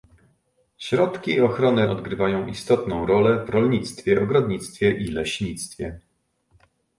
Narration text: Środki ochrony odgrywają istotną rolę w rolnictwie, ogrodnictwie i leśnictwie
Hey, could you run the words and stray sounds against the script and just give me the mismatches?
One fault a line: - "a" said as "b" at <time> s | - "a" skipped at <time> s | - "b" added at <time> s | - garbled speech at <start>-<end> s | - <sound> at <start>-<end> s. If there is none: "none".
none